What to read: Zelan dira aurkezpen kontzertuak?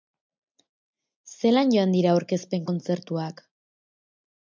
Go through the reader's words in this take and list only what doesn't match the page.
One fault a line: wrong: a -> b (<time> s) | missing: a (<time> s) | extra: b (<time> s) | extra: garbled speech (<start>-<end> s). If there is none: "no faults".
extra: joan (1.8 s)